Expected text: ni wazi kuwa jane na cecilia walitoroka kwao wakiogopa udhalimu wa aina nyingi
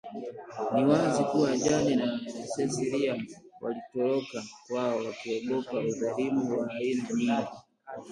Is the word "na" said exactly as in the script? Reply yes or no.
yes